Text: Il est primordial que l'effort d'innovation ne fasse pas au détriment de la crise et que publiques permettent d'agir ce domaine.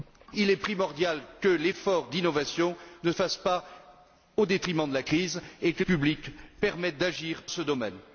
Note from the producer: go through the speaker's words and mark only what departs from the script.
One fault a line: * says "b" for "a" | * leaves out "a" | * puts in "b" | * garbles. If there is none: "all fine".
all fine